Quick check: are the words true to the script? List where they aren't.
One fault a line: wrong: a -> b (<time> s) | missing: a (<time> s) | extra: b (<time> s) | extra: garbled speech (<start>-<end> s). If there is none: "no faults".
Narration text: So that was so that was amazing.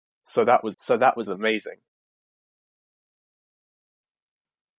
no faults